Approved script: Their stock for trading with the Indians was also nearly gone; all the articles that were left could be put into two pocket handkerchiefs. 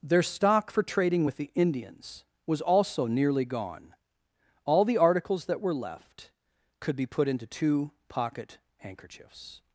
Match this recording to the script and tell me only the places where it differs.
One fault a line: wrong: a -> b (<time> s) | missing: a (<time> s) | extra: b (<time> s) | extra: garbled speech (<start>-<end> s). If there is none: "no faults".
no faults